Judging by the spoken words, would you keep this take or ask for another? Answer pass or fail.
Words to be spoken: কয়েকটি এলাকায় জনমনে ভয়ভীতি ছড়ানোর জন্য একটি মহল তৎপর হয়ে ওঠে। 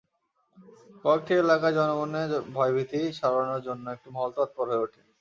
pass